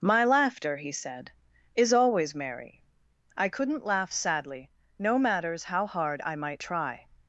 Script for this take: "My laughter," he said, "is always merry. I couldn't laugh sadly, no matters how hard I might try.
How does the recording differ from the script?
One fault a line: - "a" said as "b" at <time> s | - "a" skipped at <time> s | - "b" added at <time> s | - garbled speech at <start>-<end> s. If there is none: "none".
none